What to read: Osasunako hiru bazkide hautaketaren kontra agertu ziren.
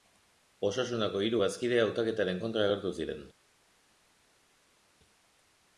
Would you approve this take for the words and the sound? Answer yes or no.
yes